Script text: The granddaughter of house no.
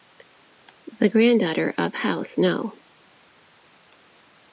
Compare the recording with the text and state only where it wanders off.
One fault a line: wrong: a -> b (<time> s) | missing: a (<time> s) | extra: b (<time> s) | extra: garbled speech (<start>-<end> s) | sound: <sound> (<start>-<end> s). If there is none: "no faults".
no faults